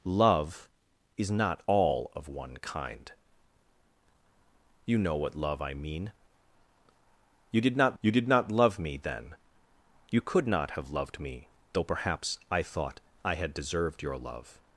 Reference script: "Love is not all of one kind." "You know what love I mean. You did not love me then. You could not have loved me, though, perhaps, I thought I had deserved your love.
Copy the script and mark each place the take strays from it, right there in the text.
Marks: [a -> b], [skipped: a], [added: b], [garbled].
"Love is not all of one kind." "You know what love I mean. You did not [added: you did not] love me then. You could not have loved me, though, perhaps, I thought I had deserved your love.